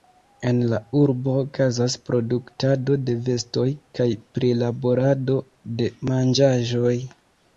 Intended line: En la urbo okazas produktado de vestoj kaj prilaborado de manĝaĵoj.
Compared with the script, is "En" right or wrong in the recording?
right